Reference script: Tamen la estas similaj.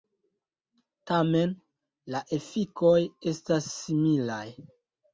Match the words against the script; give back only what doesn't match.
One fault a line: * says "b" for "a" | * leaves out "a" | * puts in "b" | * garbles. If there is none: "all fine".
* puts in "efikoj"